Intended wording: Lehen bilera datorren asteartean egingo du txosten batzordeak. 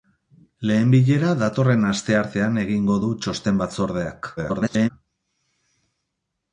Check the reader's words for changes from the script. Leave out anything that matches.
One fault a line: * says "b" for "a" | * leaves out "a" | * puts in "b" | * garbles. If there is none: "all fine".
* garbles